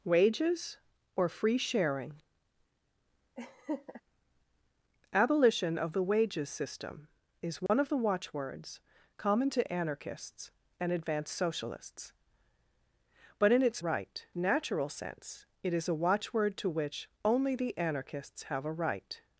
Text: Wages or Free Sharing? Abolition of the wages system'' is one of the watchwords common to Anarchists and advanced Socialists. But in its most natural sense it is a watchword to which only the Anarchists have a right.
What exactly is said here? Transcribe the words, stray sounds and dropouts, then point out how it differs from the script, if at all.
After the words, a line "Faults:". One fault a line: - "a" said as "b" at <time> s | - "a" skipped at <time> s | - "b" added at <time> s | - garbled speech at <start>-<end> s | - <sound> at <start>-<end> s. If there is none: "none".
Wages or Free Sharing? Abolition of the wages system'' is one of the watchwords common to Anarchists and advanced Socialists. But in its right natural sense it is a watchword to which only the Anarchists have a right.
Faults:
- laugh at 3.4-4.0 s
- dropout at 7.7-7.7 s
- "most" said as "right" at 13.8 s